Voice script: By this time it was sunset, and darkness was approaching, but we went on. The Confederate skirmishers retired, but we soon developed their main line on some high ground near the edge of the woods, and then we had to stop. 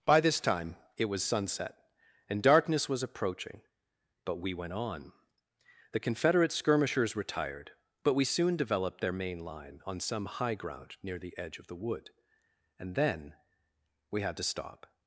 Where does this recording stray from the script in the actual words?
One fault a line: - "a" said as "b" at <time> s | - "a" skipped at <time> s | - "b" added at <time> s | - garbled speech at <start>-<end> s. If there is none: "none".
- "woods" said as "wood" at 11.8 s